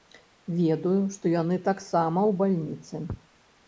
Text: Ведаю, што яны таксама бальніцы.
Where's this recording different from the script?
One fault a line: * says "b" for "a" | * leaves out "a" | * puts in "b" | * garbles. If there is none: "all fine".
* puts in "ў"